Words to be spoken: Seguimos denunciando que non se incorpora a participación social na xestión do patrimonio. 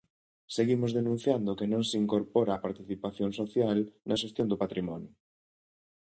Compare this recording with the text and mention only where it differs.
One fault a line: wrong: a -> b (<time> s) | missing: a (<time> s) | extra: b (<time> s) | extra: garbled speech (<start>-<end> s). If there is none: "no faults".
no faults